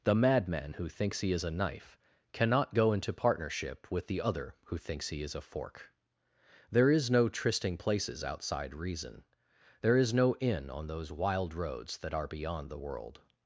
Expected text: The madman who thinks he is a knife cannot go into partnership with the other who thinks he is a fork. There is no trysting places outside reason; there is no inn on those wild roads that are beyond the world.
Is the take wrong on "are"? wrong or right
right